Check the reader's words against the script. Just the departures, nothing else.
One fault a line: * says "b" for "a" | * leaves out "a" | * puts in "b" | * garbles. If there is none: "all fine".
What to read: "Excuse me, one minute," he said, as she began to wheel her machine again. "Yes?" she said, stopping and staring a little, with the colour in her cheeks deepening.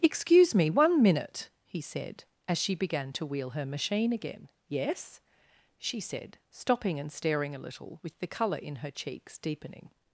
all fine